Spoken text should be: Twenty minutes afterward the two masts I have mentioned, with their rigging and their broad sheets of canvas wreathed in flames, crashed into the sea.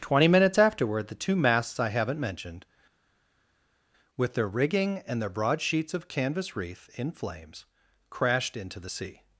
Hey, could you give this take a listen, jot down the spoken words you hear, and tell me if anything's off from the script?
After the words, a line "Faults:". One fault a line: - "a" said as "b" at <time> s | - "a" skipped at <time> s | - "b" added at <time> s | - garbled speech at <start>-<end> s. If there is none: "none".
Twenty minutes afterward the two masts I haven't mentioned, with their rigging and their broad sheets of canvas wreath in flames, crashed into the sea.
Faults:
- "have" said as "haven't" at 1.9 s
- "wreathed" said as "wreath" at 6.6 s